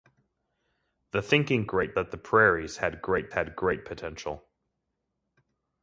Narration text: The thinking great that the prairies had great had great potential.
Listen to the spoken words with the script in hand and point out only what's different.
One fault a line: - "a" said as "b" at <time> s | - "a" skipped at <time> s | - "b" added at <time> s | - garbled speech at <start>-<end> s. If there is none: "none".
none